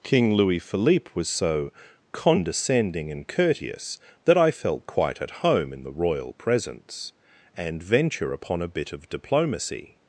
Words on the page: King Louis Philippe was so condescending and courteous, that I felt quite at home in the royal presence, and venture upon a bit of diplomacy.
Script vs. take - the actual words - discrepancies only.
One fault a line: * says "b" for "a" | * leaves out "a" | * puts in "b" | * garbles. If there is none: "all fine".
all fine